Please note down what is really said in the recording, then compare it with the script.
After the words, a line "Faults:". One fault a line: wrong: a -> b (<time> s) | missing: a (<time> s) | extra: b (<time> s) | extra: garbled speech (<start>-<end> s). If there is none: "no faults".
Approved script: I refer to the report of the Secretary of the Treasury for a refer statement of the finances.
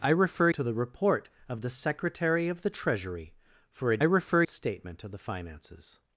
I refer to the report of the Secretary of the Treasury for a refer statement of the finances.
Faults:
no faults